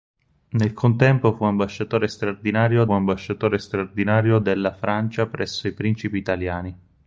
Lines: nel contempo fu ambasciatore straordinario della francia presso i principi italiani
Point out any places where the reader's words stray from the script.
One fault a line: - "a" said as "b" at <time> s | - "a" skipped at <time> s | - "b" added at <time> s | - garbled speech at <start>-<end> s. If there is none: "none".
- "ambasciatore straordinario" added at 2.9 s